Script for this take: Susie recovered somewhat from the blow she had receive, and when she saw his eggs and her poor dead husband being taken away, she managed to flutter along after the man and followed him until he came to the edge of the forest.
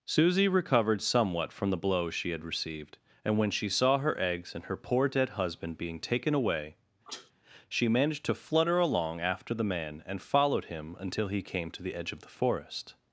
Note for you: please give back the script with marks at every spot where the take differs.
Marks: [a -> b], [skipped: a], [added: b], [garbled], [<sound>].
Susie recovered somewhat from the blow she had [receive, -> received] and when she saw [his -> her] eggs and her poor dead husband being taken away, [sneeze] she managed to flutter along after the man and followed him until he came to the edge of the forest.